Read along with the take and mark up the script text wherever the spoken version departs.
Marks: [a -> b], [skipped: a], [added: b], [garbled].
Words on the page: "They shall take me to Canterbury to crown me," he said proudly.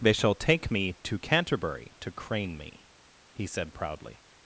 "They shall take me to Canterbury to [crown -> crane] me," he said proudly.